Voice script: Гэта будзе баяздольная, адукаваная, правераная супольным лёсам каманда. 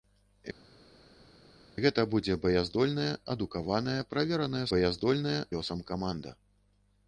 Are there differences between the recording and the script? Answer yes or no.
yes